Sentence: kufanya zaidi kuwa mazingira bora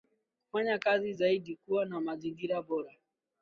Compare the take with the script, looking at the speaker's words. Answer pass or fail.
fail